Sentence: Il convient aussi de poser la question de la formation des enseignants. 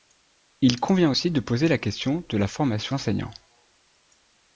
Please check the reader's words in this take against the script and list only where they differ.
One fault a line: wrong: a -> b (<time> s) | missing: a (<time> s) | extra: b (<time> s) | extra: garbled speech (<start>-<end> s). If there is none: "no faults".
missing: des (2.9 s)